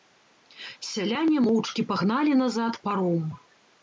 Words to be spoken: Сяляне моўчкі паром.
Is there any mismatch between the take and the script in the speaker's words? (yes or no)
yes